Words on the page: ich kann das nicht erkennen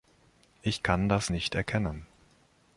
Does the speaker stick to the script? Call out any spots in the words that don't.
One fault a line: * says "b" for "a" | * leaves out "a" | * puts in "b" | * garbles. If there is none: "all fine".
all fine